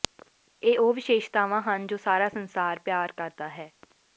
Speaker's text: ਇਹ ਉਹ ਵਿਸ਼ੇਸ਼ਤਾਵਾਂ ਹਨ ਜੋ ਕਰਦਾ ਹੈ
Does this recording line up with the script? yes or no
no